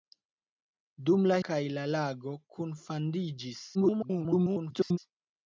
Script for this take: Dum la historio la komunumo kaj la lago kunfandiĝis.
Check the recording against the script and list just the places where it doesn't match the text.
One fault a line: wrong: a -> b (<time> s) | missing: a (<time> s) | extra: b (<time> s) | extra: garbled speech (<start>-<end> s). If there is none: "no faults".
missing: historio la komunumo (1.4 s)
extra: garbled speech (3.7-5.0 s)